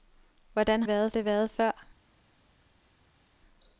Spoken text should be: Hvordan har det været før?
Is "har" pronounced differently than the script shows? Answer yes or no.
yes